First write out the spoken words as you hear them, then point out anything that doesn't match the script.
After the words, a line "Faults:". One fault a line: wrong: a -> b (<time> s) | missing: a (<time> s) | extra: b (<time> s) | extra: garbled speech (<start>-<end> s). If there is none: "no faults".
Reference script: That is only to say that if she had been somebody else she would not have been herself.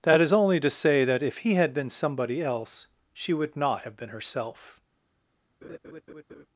That is only to say that if he had been somebody else she would not have been herself.
Faults:
wrong: she -> he (1.4 s)